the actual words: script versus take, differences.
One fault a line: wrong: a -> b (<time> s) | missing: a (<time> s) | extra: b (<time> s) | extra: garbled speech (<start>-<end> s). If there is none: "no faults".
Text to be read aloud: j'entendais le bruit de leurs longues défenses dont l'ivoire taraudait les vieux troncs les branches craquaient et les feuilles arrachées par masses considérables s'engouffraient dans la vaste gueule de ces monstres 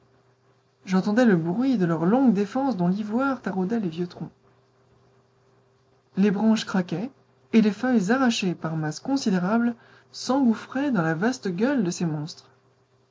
no faults